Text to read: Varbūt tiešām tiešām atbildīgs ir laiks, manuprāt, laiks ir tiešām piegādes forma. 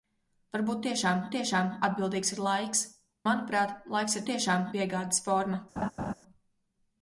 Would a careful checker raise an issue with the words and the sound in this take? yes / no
yes